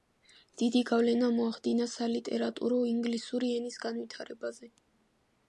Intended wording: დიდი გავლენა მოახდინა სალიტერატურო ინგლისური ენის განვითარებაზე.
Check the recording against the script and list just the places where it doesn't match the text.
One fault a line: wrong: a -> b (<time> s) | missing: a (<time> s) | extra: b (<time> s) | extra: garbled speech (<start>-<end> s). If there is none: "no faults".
no faults